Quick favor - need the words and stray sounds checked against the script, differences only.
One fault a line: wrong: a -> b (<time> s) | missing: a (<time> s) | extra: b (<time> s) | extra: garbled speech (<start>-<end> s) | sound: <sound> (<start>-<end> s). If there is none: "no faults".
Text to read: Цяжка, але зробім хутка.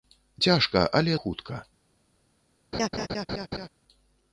missing: зробім (1.2 s)
sound: laugh (2.7-3.7 s)